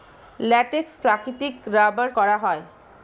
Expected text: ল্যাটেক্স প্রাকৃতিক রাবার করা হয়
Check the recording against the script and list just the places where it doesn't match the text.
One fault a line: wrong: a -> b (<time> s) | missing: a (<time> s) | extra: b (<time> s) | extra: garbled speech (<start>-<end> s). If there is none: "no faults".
no faults